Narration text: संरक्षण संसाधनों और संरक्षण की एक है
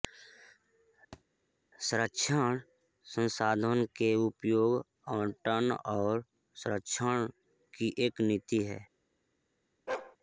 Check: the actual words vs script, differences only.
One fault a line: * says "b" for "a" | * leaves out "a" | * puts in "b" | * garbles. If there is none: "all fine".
* puts in "के उपयोग आवंटन"
* puts in "नीति"